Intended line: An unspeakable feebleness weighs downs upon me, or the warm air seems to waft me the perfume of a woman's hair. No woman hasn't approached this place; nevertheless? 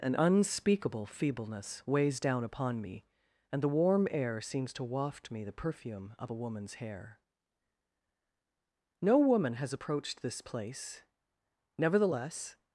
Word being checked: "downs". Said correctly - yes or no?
no